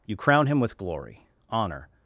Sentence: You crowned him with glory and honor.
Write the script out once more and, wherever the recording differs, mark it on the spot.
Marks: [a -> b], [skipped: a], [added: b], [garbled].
You [crowned -> crown] him with glory [skipped: and] honor.